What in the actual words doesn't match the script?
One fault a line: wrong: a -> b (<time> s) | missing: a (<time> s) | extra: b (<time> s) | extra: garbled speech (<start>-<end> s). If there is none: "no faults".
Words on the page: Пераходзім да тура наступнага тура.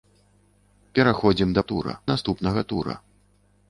no faults